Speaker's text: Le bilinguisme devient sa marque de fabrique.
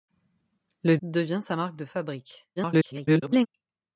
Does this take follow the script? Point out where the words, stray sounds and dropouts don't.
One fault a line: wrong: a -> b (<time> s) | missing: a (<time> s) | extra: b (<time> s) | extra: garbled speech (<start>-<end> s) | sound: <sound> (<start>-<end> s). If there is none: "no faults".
missing: bilinguisme (1.0 s)
extra: garbled speech (2.6-3.5 s)